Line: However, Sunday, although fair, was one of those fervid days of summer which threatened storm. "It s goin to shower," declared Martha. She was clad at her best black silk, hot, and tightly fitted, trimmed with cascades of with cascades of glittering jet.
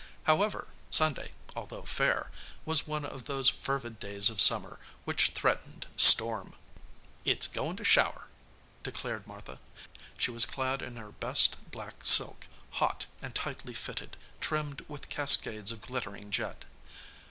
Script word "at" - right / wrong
wrong